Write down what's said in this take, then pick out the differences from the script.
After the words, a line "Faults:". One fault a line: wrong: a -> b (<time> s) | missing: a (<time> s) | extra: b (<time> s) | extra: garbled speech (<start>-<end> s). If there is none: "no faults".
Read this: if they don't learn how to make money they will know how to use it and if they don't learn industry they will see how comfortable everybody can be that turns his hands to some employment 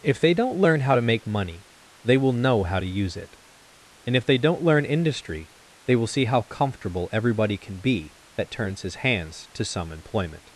if they don't learn how to make money they will know how to use it and if they don't learn industry they will see how comfortable everybody can be that turns his hands to some employment
Faults:
no faults